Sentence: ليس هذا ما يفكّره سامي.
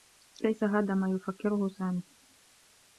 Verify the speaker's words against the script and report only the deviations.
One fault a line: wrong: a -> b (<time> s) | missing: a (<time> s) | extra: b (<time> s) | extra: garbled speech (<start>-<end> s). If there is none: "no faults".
no faults